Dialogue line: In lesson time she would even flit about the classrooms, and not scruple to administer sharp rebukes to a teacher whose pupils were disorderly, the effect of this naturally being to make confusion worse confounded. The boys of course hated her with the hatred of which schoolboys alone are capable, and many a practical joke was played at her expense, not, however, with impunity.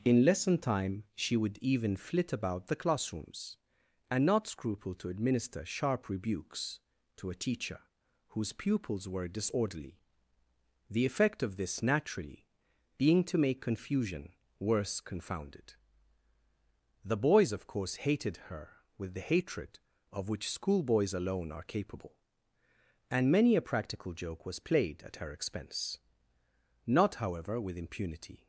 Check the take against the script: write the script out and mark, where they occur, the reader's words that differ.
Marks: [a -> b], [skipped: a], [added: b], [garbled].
In lesson time she would even flit about the classrooms, and not scruple to administer sharp rebukes to a teacher whose pupils were disorderly, the effect of this naturally being to make confusion worse confounded. The boys of course hated her with the hatred of which schoolboys alone are capable, and many a practical joke was played at her expense, not, however, with impunity.